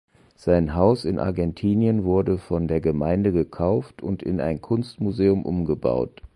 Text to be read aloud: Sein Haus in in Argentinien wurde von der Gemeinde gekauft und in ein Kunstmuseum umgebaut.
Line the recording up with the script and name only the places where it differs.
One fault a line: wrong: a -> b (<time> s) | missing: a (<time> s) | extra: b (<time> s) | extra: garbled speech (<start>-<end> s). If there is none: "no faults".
missing: in (1.2 s)